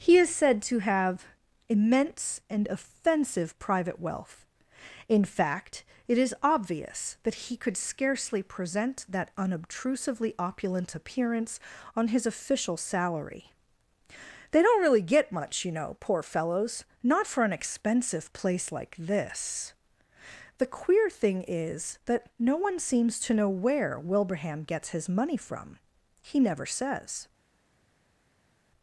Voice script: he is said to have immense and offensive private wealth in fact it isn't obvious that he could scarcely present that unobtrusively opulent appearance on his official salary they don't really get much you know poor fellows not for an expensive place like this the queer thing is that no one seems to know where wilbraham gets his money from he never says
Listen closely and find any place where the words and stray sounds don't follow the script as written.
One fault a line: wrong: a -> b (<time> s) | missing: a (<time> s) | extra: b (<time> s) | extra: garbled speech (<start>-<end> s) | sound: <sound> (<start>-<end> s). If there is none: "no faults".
wrong: isn't -> is (6.2 s)